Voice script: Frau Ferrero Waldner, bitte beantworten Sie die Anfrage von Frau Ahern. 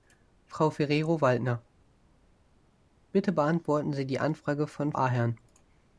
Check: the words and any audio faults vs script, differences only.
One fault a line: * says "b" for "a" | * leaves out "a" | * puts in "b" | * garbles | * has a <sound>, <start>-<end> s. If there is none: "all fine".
* leaves out "Frau"